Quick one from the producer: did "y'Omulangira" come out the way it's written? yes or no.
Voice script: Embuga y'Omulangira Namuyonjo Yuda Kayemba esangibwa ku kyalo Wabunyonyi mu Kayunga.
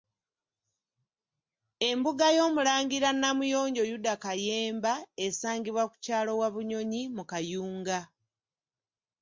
yes